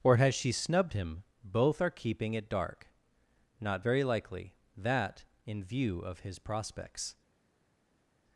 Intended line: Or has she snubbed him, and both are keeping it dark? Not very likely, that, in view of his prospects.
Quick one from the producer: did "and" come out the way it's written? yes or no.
no